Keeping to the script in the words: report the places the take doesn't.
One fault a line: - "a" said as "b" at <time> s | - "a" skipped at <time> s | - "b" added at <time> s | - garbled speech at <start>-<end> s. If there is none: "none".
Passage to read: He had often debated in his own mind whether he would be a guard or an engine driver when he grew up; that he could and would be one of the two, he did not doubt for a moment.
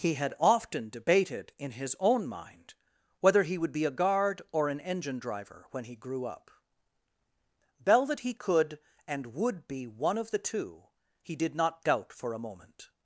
- "bell" added at 7.8 s